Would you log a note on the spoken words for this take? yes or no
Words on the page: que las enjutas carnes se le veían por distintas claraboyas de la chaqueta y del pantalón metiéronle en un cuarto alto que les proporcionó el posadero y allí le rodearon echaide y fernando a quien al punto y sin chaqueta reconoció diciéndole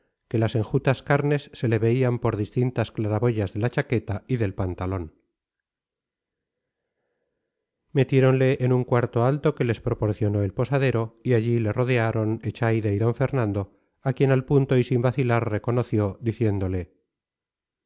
yes